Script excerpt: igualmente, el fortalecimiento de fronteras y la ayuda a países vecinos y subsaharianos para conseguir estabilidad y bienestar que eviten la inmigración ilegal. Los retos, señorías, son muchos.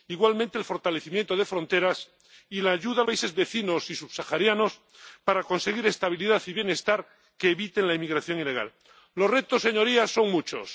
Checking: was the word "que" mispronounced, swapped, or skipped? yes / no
no